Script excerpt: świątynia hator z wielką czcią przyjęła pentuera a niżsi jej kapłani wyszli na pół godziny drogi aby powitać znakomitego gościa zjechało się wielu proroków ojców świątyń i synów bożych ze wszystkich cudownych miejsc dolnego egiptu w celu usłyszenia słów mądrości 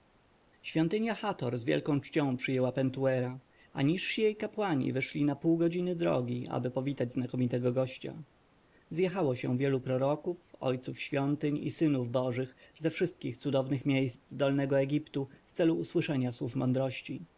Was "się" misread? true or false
false